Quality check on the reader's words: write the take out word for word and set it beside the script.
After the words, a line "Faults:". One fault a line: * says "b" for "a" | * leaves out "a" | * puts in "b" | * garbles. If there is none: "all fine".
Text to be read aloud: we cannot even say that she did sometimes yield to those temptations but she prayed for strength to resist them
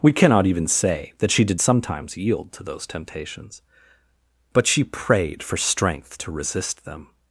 we cannot even say that she did sometimes yield to those temptations but she prayed for strength to resist them
Faults:
all fine